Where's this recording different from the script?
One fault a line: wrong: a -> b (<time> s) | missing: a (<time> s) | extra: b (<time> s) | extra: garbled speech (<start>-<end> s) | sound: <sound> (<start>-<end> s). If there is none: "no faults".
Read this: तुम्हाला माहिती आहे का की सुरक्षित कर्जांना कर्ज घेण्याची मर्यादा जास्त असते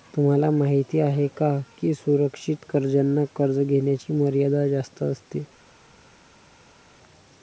no faults